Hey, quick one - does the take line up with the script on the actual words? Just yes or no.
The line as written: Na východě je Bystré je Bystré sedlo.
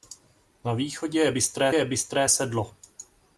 yes